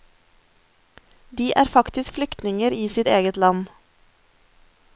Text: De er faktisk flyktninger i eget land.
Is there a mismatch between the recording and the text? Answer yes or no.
yes